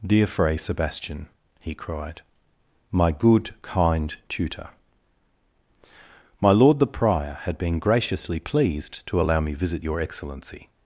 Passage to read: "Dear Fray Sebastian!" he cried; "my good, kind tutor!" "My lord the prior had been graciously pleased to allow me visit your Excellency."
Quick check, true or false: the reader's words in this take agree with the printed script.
true